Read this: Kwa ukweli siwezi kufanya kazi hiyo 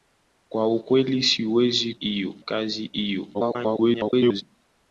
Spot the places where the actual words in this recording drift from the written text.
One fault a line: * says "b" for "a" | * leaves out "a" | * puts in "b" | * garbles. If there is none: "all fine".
* says "hiyo" for "kufanya"
* garbles